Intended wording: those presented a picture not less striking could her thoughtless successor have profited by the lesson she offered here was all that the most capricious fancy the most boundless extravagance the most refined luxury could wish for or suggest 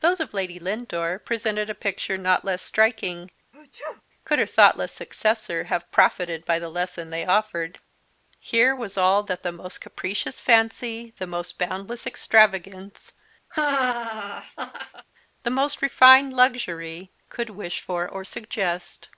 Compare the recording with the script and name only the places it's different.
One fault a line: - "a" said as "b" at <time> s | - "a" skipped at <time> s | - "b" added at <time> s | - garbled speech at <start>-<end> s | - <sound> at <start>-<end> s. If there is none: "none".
- "of lady lindore" added at 0.2 s
- sneeze at 3.5-4.0 s
- "she" said as "they" at 7.1 s
- laugh at 13.5-15.1 s